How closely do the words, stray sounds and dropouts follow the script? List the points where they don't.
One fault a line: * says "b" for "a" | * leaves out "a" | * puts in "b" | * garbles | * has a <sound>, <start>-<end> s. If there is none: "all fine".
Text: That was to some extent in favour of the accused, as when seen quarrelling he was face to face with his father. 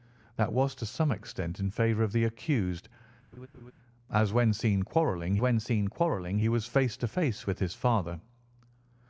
* has a laugh, 3.3-3.7 s
* puts in "when seen quarrelling"